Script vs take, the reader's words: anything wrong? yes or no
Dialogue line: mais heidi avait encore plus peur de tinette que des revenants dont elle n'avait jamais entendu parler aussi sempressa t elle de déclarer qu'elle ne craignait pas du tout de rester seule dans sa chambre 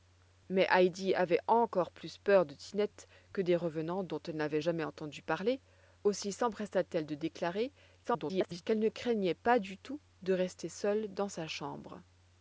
yes